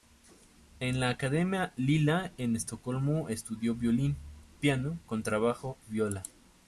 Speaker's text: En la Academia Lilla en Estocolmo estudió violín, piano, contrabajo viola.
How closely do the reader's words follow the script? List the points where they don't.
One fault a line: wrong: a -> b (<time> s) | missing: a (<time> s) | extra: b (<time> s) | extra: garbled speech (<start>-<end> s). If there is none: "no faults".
no faults